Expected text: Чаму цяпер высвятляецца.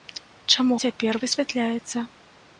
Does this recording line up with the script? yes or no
yes